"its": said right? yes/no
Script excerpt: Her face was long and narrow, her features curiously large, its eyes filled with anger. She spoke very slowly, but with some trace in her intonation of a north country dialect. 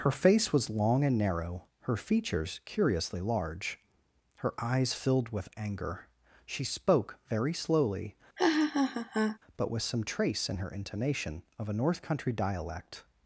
no